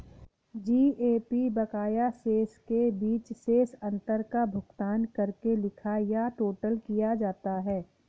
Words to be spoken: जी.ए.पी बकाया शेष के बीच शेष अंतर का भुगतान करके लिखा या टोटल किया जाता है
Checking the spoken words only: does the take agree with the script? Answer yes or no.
yes